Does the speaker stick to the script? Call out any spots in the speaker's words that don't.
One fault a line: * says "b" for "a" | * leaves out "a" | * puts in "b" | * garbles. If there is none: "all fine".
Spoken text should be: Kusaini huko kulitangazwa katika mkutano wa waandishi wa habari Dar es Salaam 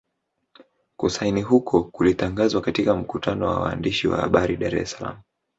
all fine